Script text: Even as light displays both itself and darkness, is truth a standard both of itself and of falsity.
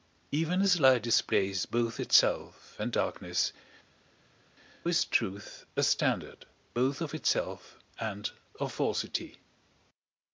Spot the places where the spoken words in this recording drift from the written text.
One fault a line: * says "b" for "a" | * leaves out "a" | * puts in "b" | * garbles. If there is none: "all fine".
all fine